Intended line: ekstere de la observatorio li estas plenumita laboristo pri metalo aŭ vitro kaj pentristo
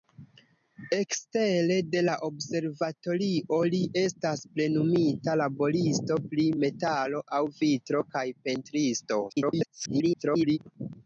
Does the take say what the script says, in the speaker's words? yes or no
no